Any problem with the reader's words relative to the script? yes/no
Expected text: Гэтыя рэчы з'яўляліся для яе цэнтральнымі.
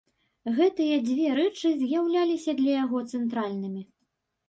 yes